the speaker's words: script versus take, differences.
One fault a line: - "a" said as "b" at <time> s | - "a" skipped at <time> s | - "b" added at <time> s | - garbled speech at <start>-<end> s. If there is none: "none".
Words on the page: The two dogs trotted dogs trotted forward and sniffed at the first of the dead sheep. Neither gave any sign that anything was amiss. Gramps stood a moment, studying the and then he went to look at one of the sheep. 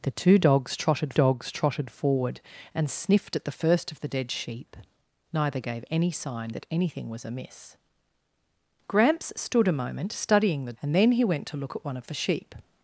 none